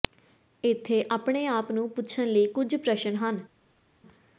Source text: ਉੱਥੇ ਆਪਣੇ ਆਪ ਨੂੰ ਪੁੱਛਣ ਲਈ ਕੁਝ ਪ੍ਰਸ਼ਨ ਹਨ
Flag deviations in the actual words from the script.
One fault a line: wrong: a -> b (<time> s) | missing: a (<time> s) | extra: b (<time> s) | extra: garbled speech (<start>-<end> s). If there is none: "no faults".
wrong: ਉੱਥੇ -> ਇੱਥੇ (0.6 s)